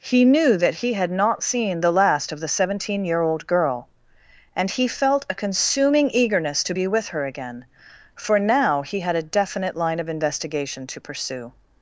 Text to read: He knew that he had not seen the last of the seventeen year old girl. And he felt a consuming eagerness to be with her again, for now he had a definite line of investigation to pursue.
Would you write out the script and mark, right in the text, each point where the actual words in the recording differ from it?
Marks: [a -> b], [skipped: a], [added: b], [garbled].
He knew that he had not seen the last of the seventeen year old girl. And he felt a consuming eagerness to be with her again, for now he had a definite line of investigation to pursue.